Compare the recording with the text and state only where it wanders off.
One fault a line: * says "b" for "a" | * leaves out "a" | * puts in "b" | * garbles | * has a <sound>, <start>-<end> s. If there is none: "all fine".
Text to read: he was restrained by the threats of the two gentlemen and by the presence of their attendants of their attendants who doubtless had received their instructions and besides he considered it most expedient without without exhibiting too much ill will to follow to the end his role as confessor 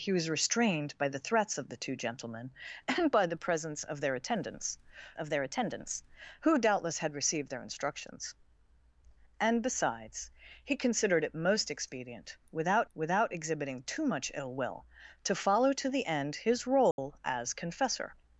* has a dropout, 16.9-17.0 s